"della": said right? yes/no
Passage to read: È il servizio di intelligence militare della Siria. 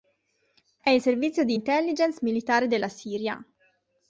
yes